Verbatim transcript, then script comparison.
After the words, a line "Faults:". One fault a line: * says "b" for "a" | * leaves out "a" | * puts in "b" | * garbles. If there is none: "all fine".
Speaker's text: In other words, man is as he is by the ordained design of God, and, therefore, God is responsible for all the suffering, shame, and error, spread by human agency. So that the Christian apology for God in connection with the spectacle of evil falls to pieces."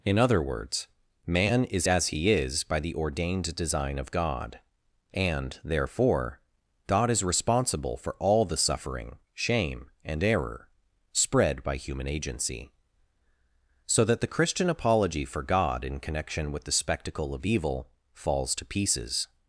In other words, man is as he is by the ordained design of God, and, therefore, God is responsible for all the suffering, shame, and error, spread by human agency. So that the Christian apology for God in connection with the spectacle of evil falls to pieces."
Faults:
all fine